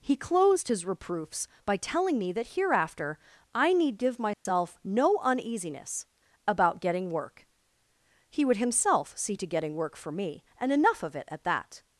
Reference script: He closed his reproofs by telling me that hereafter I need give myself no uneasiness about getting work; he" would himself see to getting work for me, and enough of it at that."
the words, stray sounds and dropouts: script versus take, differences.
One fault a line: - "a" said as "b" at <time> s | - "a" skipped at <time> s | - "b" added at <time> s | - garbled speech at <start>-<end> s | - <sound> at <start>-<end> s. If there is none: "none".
- dropout at 4.3-4.5 s